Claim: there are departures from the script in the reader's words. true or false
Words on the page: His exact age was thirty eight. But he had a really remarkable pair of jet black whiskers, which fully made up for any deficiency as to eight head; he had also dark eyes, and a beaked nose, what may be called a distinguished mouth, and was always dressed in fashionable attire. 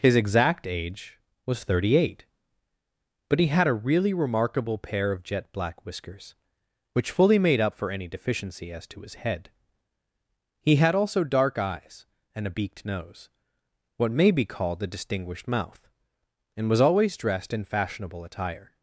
true